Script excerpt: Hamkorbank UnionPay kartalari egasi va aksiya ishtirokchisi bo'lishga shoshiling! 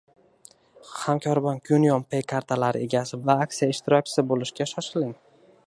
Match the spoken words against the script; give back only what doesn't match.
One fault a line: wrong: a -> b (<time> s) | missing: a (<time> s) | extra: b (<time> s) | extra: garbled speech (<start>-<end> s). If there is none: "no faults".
no faults